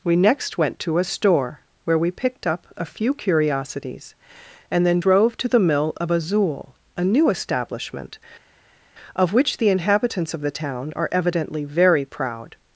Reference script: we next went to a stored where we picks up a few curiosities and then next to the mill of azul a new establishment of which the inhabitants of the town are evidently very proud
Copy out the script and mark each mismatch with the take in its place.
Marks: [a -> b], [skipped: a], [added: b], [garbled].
we next went to a [stored -> store] where we [picks -> picked] up a few curiosities and then [next -> drove] to the mill of azul a new establishment of which the inhabitants of the town are evidently very proud